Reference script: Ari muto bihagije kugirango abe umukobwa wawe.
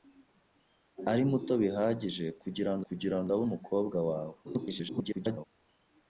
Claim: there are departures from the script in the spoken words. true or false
true